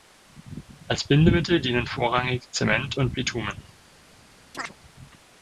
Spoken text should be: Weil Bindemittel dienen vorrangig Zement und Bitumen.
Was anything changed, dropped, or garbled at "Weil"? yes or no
yes